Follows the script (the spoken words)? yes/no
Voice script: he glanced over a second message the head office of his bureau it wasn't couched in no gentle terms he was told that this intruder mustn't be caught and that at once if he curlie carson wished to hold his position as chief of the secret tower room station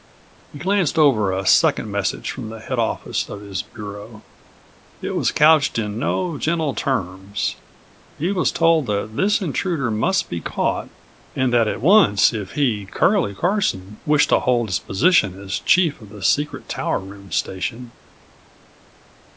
no